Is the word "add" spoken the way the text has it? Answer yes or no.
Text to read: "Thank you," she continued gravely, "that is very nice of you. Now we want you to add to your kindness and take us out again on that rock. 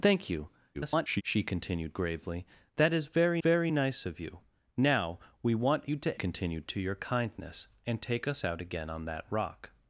no